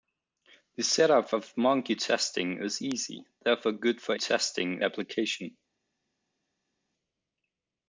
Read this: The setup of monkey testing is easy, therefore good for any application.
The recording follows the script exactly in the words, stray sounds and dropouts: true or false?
false